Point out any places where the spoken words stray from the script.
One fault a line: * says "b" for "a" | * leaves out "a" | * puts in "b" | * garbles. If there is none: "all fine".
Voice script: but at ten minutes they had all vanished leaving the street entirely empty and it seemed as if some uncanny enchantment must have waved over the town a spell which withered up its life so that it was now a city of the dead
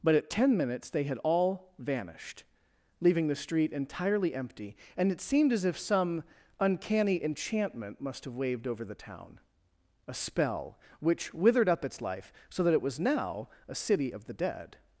all fine